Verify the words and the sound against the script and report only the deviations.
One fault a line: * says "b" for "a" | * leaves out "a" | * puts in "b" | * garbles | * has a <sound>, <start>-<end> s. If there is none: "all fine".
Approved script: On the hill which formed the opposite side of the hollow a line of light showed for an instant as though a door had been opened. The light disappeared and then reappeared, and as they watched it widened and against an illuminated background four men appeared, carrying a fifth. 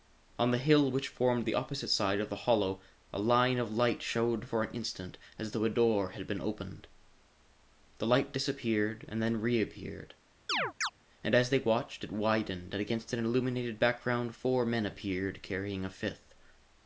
* has a chirp, 10.5-10.9 s